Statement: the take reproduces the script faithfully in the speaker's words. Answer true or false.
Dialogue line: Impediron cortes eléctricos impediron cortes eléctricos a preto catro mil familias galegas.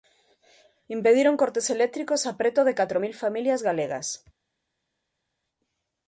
false